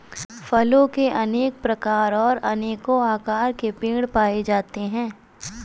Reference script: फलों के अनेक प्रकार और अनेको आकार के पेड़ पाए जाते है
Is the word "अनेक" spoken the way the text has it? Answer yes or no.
yes